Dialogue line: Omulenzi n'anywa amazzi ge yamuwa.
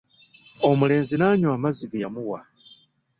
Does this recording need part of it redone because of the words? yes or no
no